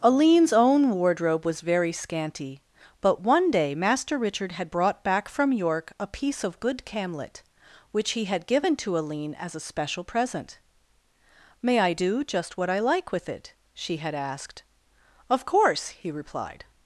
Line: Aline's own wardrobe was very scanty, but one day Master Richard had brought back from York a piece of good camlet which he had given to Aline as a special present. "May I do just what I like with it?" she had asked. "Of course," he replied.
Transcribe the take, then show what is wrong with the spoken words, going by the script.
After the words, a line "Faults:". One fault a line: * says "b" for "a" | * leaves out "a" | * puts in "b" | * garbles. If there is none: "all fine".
Aline's own wardrobe was very scanty, but one day Master Richard had brought back from York a piece of good camlet which he had given to Aline as a special present. "May I do just what I like with it?" she had asked. "Of course," he replied.
Faults:
all fine